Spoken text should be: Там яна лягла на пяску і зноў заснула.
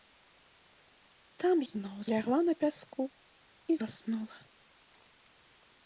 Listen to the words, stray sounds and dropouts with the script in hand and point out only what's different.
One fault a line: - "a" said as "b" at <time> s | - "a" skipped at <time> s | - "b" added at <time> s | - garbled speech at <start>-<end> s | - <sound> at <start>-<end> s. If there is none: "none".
- "яна" said as "зноў" at 1.7 s
- "зноў" skipped at 3.8 s